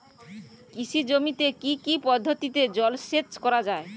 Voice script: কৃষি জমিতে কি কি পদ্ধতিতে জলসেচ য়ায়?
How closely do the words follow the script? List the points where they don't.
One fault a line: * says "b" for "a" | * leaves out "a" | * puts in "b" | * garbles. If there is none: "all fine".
* puts in "করা"